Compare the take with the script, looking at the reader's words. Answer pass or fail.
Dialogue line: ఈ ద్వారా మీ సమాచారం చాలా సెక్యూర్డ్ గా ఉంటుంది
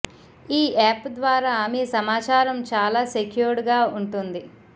fail